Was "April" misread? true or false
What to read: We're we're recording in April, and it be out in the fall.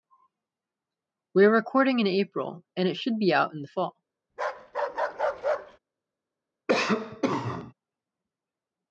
false